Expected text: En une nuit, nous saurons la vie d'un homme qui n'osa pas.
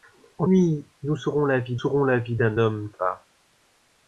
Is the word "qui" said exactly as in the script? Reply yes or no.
no